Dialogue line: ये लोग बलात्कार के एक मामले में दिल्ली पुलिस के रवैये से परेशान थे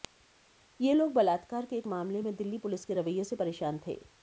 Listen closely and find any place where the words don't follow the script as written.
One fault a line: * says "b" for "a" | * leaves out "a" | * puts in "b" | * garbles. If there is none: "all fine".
all fine